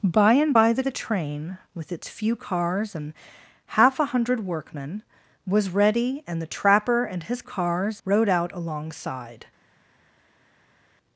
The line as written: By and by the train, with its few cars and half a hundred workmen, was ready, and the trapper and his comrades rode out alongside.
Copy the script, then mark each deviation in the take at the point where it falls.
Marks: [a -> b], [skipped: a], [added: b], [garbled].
By and by the [added: the] train, with its few cars and half a hundred workmen, was ready, and the trapper and his [comrades -> cars] rode out alongside.